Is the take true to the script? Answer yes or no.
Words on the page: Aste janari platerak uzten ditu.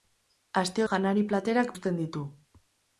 yes